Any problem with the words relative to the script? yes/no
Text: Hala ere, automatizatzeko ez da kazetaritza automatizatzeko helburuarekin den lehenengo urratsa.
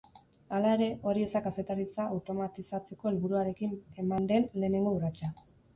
yes